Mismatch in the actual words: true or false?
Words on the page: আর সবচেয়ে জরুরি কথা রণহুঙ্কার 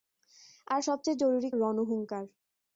true